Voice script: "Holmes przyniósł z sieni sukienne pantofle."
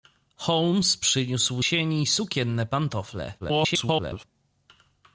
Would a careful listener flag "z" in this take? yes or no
yes